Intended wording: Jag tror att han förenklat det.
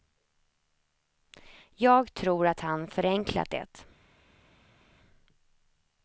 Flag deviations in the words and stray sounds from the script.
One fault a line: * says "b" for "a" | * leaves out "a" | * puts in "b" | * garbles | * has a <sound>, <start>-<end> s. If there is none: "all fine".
all fine